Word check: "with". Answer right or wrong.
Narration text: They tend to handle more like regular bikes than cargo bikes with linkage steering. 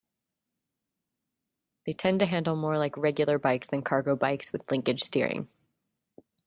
right